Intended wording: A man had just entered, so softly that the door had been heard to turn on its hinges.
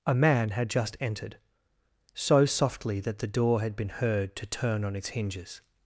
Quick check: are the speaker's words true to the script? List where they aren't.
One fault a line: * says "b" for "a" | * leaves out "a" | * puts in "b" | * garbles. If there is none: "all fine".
all fine